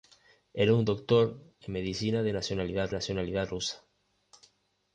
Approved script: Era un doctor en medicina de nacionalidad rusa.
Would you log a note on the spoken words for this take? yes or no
yes